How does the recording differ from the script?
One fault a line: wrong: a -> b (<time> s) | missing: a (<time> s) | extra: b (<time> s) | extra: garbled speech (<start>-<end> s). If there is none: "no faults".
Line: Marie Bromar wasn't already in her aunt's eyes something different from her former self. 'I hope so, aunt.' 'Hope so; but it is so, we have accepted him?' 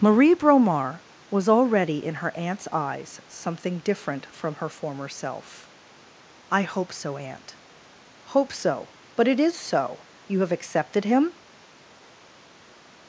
wrong: wasn't -> was (1.3 s)
wrong: we -> you (10.2 s)